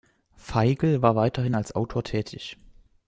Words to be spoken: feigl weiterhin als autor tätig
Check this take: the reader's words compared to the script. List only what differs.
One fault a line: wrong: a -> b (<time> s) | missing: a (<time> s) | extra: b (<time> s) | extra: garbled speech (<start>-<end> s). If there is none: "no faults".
extra: war (1.0 s)